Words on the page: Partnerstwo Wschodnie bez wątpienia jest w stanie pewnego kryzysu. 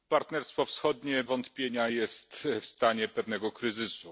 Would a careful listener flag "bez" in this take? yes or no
yes